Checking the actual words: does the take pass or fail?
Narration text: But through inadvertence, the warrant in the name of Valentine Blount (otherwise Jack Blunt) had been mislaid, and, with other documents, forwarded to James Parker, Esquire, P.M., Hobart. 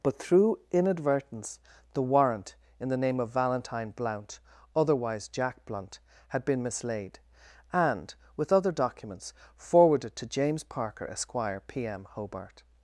pass